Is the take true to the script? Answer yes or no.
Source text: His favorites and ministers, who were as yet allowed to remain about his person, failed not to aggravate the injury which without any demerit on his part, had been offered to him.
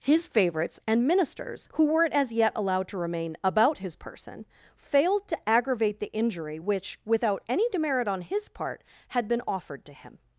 no